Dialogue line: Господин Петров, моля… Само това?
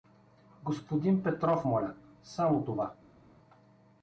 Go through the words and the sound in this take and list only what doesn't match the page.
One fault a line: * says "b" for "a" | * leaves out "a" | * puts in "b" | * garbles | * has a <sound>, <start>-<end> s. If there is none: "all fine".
all fine